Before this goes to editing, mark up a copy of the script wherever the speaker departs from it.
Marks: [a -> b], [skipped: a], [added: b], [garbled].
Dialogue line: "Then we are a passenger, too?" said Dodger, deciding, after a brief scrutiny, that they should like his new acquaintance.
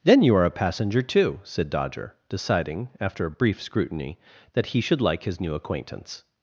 "Then [we -> you] are a passenger, too?" said Dodger, deciding, after a brief scrutiny, that [they -> he] should like his new acquaintance.